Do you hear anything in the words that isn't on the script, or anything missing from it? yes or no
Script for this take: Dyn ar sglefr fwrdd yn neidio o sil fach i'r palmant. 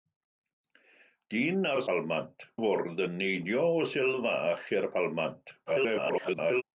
yes